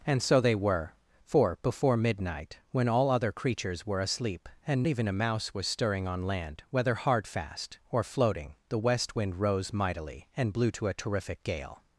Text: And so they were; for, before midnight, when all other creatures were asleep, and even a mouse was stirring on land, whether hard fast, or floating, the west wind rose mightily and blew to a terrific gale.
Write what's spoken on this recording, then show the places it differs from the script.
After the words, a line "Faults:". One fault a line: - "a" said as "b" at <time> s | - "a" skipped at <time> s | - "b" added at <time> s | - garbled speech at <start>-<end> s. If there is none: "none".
And so they were; for, before midnight, when all other creatures were asleep, and even a mouse was stirring on land, whether hard fast, or floating, the west wind rose mightily and blew to a terrific gale.
Faults:
none